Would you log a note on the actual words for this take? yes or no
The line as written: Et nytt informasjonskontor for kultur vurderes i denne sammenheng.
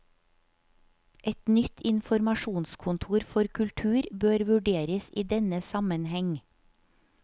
yes